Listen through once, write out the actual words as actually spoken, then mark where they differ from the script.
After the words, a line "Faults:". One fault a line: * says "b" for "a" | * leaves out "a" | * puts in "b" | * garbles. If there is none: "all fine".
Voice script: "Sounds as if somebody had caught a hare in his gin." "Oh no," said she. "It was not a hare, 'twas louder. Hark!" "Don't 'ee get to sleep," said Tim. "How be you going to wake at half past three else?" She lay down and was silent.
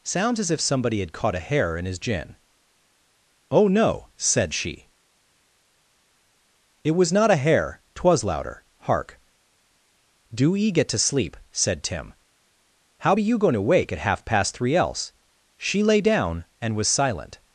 "Sounds as if somebody had caught a hare in his gin." "Oh no," said she. "It was not a hare, 'twas louder. Hark!" "Do 'ee get to sleep," said Tim. "How be you going to wake at half past three else?" She lay down and was silent.
Faults:
* says "Do" for "Don't"